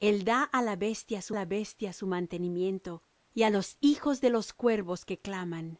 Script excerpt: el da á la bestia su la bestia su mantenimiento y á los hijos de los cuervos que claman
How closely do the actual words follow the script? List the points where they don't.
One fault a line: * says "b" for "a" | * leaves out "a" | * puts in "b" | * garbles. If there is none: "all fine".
all fine